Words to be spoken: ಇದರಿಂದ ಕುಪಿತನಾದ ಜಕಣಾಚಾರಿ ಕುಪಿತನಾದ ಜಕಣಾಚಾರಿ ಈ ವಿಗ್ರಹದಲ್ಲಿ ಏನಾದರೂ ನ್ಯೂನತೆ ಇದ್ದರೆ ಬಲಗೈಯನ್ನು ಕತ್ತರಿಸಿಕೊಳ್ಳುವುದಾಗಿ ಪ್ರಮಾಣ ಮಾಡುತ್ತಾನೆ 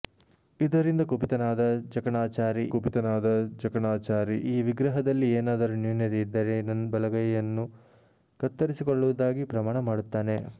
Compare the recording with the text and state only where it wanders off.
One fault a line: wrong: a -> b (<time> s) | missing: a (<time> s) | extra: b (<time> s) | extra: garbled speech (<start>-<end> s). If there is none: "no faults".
no faults